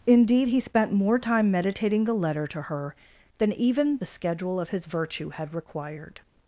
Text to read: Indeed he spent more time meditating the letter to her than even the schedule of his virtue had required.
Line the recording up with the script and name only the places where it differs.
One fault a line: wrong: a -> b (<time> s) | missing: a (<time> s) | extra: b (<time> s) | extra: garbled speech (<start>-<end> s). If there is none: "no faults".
no faults